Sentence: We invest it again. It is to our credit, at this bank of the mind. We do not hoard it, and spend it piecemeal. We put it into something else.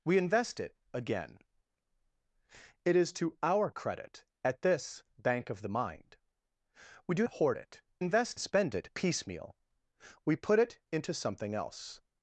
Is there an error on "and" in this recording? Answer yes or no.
yes